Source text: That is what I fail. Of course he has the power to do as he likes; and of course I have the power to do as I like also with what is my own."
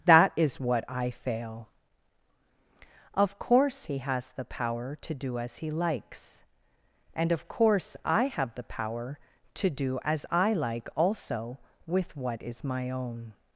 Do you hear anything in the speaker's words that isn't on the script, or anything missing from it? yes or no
no